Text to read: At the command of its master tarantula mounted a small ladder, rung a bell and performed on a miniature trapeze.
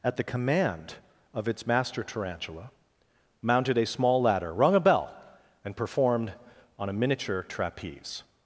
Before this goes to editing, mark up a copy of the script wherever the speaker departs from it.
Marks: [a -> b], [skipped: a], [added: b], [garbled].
At the command of its master tarantula mounted a small ladder, rung a bell and performed on a miniature trapeze.